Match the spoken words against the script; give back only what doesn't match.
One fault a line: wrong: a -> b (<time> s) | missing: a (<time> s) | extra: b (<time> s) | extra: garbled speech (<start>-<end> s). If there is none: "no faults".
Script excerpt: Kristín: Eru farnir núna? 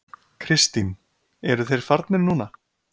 extra: þeir (1.7 s)